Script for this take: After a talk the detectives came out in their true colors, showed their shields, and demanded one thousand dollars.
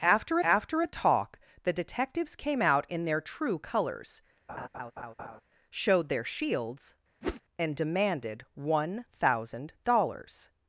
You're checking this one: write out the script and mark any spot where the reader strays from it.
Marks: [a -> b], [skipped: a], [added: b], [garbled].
After [added: after] a talk the detectives came out in their true colors, showed their shields, and demanded one thousand dollars.